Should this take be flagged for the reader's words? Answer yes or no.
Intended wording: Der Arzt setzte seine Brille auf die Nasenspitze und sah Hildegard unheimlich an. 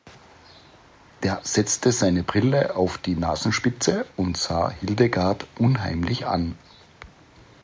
yes